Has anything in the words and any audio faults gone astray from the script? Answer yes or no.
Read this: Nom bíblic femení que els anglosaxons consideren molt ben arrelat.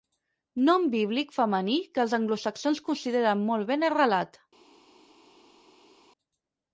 no